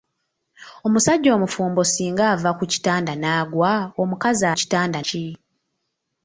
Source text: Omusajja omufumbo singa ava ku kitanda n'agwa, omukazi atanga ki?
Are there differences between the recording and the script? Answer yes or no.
yes